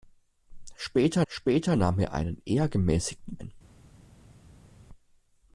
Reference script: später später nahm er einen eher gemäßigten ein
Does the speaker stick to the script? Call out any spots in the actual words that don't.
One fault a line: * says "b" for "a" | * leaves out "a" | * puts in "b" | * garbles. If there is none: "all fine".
all fine